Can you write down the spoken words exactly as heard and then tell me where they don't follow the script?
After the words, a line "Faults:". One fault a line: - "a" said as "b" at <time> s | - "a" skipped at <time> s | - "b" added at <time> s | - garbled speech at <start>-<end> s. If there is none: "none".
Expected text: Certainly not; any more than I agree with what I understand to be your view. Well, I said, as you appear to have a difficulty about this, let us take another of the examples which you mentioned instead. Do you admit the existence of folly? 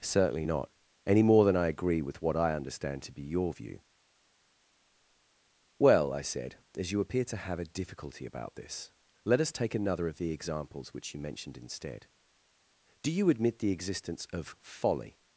Certainly not; any more than I agree with what I understand to be your view. Well, I said, as you appear to have a difficulty about this, let us take another of the examples which you mentioned instead. Do you admit the existence of folly?
Faults:
none